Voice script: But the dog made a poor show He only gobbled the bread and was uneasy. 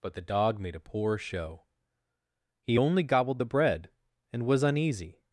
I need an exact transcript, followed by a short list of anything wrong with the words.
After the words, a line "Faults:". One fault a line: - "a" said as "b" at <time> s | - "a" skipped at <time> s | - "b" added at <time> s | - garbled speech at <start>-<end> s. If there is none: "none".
But the dog made a poor show He only gobbled the bread and was uneasy.
Faults:
none